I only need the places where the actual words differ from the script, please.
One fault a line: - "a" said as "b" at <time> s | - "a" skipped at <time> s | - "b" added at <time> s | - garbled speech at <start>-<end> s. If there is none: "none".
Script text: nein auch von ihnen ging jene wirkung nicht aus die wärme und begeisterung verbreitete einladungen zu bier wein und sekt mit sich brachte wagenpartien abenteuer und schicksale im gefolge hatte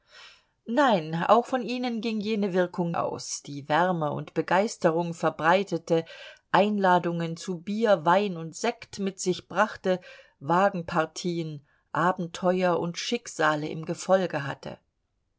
- "nicht" skipped at 2.9 s